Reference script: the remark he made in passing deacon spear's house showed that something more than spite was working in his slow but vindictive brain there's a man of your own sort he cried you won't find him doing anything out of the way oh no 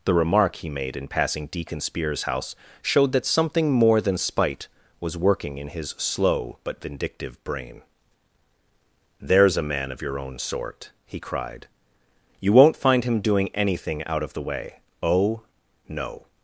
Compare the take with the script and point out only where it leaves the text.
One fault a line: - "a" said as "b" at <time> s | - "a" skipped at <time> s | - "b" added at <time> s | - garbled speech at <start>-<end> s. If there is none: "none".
none